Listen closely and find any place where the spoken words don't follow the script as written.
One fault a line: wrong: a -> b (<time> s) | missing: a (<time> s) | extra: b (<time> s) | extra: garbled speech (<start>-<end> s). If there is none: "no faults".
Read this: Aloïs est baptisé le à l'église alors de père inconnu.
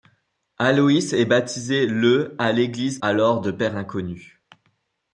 no faults